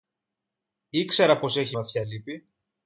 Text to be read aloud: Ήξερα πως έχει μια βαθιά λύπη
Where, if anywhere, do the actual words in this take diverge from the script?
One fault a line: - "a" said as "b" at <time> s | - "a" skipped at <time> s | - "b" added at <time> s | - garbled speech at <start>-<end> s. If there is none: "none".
- "μια" skipped at 1.8 s